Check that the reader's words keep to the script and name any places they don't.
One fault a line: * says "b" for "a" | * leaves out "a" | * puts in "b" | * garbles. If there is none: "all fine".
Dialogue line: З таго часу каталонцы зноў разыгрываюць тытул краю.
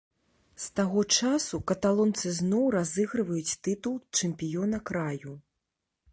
* puts in "чэмпіёна"